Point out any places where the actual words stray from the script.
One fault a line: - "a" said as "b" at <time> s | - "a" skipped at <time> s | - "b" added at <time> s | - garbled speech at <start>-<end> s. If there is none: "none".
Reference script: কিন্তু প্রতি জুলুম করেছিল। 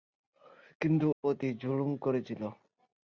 none